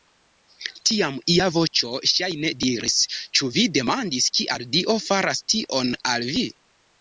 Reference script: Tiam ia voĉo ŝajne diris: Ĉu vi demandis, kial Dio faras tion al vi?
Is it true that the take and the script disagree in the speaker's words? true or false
false